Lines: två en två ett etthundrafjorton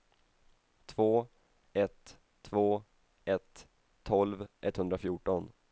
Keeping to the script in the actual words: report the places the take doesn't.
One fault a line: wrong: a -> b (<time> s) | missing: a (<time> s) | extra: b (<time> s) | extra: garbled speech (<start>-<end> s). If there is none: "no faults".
wrong: en -> ett (1.7 s)
extra: tolv (4.0 s)